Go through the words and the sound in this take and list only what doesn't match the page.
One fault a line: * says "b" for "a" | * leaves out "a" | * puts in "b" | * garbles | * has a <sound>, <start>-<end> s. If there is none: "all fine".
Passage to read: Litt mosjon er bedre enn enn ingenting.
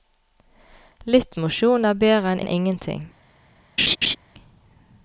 * has a laugh, 3.8-4.2 s